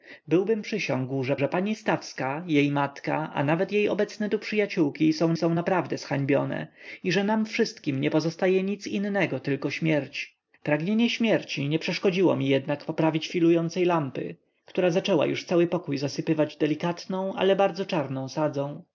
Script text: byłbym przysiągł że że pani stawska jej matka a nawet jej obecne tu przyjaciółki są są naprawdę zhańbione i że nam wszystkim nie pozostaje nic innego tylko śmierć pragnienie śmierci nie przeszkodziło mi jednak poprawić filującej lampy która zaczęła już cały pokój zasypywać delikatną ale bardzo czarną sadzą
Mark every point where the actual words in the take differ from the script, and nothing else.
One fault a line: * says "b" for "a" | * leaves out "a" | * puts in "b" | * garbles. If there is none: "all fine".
all fine